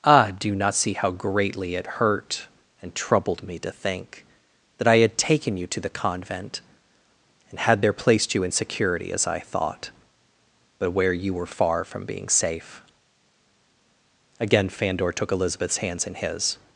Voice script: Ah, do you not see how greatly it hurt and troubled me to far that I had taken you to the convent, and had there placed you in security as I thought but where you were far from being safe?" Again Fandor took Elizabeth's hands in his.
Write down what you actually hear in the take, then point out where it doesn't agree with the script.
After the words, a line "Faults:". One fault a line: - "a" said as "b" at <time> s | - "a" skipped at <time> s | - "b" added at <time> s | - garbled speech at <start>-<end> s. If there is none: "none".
Ah, do you not see how greatly it hurt and troubled me to think that I had taken you to the convent, and had there placed you in security as I thought but where you were far from being safe?" Again Fandor took Elizabeth's hands in his.
Faults:
- "far" said as "think" at 3.7 s